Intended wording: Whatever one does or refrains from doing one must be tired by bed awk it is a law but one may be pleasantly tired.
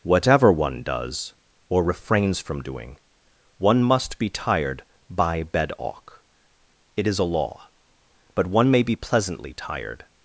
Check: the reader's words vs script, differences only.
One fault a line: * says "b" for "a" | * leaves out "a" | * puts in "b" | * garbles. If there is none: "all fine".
all fine